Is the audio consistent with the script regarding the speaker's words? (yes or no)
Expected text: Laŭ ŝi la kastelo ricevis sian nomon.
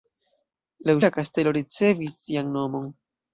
no